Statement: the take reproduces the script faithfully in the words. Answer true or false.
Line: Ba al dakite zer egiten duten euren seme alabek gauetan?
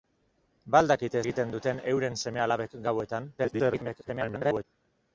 false